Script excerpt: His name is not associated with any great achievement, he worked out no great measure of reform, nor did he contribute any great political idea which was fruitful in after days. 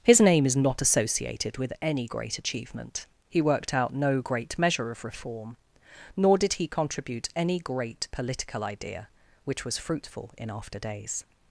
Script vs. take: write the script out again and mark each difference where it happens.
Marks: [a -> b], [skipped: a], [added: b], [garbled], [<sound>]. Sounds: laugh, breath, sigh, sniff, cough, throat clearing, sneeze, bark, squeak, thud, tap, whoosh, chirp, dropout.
His name is not associated with any great achievement, he worked out no great measure of reform, nor did he contribute any great political idea which was fruitful in after days.